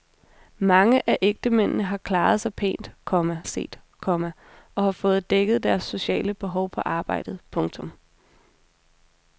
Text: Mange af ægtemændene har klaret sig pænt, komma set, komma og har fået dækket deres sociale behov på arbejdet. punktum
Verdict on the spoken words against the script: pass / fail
pass